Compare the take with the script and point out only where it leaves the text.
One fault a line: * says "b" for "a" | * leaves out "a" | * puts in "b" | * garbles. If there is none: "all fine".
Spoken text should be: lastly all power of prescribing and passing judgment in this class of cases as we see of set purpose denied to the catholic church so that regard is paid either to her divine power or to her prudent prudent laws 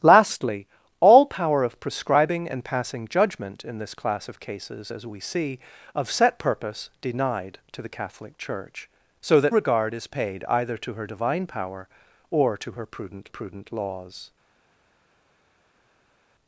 all fine